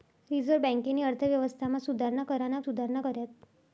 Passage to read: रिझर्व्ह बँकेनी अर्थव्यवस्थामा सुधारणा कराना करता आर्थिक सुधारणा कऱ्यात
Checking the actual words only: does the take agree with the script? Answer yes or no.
no